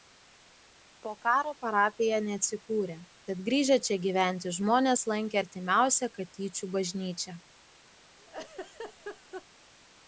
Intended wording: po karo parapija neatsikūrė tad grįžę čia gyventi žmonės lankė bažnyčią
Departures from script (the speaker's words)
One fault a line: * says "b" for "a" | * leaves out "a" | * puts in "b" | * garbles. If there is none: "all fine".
* puts in "artimiausią katyčių"